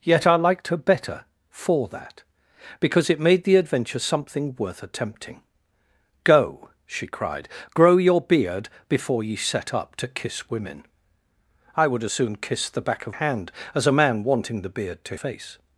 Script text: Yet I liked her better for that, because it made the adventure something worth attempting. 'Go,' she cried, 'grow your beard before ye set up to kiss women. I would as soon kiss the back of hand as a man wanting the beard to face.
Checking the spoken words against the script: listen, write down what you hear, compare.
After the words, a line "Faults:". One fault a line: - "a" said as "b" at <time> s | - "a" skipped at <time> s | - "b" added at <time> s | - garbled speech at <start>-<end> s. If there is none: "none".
Yet I liked her better for that, because it made the adventure something worth attempting. 'Go,' she cried, 'grow your beard before ye set up to kiss women. I would as soon kiss the back of hand as a man wanting the beard to face.
Faults:
none